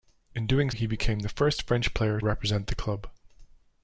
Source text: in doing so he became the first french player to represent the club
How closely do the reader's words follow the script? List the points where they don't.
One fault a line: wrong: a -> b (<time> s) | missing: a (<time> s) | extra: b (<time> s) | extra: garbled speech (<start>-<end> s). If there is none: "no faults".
missing: so (0.7 s)
missing: to (2.2 s)